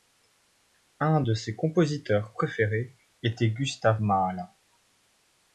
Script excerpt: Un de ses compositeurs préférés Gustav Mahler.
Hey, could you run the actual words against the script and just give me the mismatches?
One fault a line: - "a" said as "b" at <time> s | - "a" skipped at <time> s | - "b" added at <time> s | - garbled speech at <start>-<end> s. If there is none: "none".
- "était" added at 3.2 s